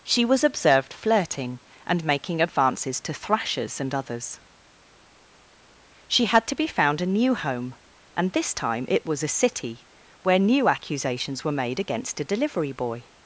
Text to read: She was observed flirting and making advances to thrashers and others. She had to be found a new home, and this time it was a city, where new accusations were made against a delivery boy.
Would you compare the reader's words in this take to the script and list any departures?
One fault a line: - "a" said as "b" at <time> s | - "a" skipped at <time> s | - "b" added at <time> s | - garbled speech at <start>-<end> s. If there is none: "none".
none